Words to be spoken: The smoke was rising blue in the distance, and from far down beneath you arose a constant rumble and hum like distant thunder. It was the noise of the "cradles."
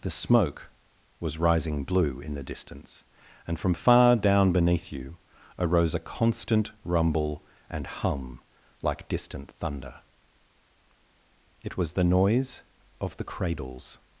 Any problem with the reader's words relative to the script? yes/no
no